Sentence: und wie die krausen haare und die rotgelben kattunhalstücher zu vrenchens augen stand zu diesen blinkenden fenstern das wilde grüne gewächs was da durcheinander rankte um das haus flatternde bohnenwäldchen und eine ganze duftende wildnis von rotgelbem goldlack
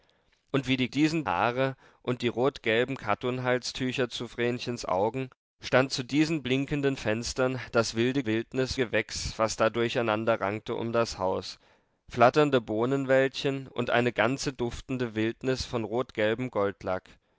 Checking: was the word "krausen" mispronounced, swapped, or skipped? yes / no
yes